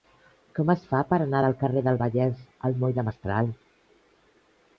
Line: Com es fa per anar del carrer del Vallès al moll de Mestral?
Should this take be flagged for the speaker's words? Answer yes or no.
no